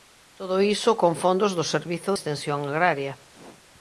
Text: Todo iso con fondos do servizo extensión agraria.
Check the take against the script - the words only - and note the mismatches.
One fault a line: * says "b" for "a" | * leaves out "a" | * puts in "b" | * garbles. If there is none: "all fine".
all fine